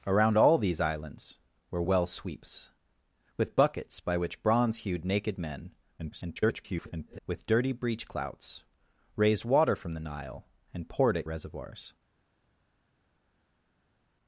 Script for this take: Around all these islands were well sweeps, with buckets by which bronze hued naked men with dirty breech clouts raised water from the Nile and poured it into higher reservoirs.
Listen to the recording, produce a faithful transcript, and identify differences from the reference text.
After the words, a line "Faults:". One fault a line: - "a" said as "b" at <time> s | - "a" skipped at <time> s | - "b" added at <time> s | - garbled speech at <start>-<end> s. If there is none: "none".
Around all these islands were well sweeps, with buckets by which bronze hued naked men [garbled] with dirty breech clouts raised water from the Nile and poured it reservoirs.
Faults:
- garbled speech at 6.0-7.2 s
- "into higher" skipped at 11.3 s